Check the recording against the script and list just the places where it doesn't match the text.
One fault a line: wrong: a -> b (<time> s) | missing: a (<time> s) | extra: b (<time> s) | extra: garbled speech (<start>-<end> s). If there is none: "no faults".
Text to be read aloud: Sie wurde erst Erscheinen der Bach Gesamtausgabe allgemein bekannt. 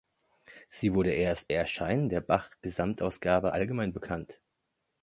no faults